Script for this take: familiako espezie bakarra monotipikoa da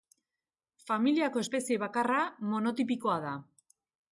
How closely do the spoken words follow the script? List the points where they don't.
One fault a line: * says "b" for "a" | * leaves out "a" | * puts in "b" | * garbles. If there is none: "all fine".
all fine